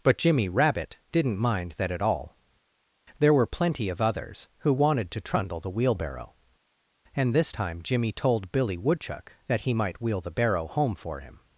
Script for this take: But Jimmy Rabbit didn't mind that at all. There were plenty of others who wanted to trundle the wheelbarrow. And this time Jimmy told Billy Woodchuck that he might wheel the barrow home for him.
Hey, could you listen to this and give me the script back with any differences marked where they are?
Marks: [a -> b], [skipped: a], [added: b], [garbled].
But Jimmy Rabbit didn't mind that at all. There were plenty of others who wanted to trundle the wheelbarrow. And this time Jimmy told Billy Woodchuck that he might wheel the barrow home for him.